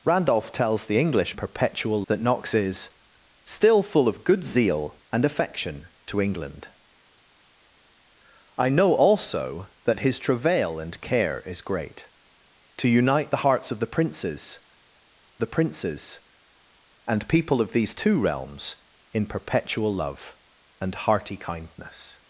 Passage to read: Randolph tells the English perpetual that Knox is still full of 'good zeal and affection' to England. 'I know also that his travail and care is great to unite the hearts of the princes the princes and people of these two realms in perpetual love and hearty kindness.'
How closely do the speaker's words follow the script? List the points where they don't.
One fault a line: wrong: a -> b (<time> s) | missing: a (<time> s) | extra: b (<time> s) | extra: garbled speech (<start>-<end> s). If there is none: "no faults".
no faults